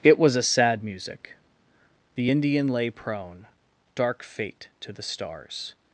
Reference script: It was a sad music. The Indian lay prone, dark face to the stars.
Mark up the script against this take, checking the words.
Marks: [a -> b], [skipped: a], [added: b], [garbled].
It was a sad music. The Indian lay prone, dark [face -> fate] to the stars.